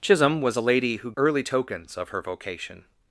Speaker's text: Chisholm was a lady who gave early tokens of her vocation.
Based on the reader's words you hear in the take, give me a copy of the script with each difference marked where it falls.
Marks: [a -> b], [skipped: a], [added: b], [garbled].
Chisholm was a lady who [skipped: gave] early tokens of her vocation.